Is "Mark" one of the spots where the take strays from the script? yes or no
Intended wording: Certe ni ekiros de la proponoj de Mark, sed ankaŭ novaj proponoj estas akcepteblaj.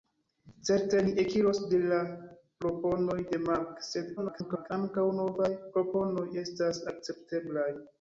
no